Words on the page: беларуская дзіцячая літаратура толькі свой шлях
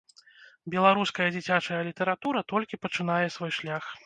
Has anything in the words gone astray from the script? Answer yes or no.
yes